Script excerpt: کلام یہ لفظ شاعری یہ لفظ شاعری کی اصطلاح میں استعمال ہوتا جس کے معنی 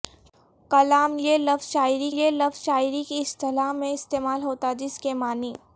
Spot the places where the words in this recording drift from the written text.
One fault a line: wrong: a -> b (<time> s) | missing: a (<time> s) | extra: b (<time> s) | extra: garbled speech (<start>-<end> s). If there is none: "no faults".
no faults